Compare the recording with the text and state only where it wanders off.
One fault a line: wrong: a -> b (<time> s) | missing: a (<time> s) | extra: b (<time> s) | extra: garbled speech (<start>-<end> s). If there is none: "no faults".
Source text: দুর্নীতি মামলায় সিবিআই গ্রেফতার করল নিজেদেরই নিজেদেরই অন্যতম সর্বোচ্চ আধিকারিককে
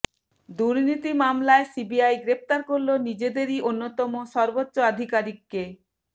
missing: নিজেদেরই (3.6 s)